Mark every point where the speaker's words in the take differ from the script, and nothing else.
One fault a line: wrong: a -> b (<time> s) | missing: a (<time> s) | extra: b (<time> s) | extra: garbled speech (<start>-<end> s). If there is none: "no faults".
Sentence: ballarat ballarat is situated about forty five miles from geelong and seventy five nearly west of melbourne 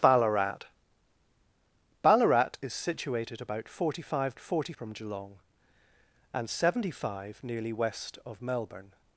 wrong: miles -> forty (4.4 s)